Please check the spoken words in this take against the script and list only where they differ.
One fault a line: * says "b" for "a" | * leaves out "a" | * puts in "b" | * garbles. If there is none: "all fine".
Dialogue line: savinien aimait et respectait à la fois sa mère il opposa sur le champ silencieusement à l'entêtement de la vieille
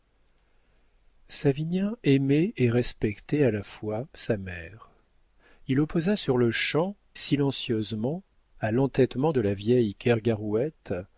all fine